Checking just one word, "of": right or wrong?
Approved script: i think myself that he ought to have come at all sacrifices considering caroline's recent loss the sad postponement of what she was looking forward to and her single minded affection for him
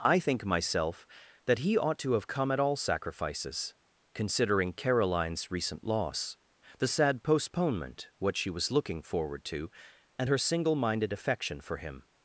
wrong